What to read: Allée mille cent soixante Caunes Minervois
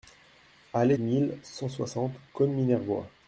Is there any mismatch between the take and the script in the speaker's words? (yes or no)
no